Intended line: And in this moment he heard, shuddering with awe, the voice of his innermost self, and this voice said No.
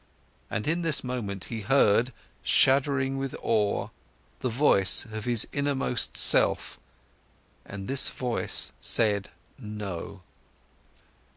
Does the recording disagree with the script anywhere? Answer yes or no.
no